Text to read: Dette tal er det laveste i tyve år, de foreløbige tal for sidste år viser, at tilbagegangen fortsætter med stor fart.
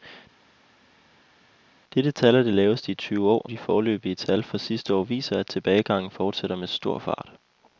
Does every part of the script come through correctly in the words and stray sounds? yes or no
yes